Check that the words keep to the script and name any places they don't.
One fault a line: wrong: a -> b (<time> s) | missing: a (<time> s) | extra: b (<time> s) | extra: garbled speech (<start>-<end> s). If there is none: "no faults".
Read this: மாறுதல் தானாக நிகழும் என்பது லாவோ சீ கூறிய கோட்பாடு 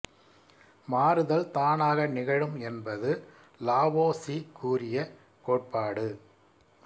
no faults